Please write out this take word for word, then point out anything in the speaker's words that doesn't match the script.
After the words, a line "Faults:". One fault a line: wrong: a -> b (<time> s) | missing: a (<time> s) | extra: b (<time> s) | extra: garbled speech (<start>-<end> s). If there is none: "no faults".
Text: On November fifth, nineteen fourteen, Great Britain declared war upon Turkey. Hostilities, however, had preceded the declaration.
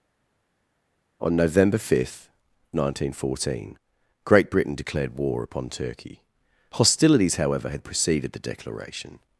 On November fifth, nineteen fourteen, Great Britain declared war upon Turkey. Hostilities, however, had preceded the declaration.
Faults:
no faults